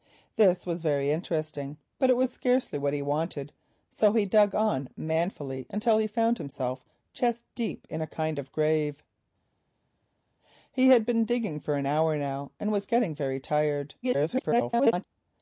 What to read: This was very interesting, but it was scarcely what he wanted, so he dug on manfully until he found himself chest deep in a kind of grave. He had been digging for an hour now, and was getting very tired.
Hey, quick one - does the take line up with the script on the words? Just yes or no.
no